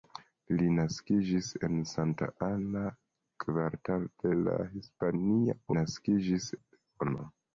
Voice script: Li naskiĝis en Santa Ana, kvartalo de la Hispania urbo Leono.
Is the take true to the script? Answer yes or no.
no